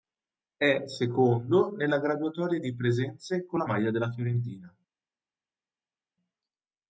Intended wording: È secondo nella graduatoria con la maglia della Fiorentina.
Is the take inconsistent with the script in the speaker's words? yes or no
yes